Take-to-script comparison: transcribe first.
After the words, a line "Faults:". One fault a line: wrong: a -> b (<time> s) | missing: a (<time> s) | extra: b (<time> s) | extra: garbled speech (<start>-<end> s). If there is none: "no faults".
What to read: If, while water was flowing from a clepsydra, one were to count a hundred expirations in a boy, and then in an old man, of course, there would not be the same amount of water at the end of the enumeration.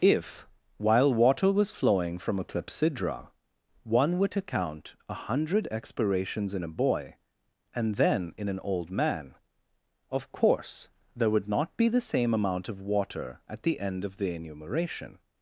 If, while water was flowing from a clepsydra, one were to count a hundred expirations in a boy, and then in an old man, of course, there would not be the same amount of water at the end of the enumeration.
Faults:
no faults